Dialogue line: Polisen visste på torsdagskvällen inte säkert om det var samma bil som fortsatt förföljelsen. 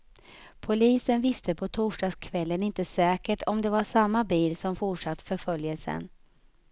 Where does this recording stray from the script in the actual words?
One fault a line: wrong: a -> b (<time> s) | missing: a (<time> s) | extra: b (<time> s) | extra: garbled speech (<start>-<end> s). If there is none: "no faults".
no faults